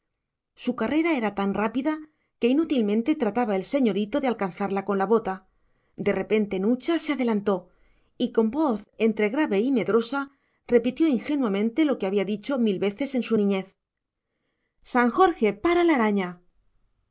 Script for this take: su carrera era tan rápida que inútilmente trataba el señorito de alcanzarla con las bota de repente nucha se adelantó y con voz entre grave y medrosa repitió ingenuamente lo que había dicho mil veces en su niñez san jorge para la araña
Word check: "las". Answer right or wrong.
wrong